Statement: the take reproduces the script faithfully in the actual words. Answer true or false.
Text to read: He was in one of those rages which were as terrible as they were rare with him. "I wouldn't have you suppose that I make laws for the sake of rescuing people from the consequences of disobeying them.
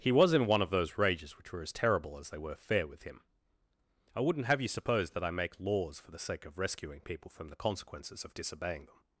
false